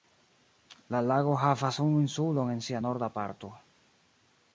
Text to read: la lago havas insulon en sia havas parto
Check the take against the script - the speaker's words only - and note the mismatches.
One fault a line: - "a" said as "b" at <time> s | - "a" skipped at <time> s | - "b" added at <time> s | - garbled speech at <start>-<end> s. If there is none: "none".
- "unu" added at 1.8 s
- "havas" said as "norda" at 2.8 s